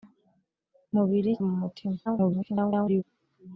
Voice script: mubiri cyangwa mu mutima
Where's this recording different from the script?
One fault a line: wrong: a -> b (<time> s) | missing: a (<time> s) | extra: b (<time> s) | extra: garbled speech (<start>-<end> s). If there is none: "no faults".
missing: cyangwa (1.3 s)
extra: garbled speech (2.1-3.0 s)